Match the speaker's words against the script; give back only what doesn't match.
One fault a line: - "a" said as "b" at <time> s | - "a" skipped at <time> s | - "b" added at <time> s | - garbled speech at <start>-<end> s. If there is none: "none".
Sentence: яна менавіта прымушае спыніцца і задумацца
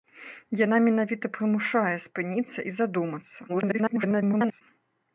- garbled speech at 3.5-4.6 s